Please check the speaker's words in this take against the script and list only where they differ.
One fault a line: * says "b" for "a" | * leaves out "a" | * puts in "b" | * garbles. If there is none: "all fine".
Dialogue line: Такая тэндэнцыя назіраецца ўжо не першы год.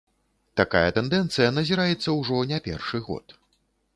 all fine